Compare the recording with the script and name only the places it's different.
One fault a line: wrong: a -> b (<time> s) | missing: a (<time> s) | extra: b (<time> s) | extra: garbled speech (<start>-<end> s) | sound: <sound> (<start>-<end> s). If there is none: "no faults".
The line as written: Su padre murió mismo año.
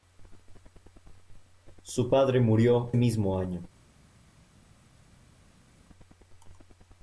no faults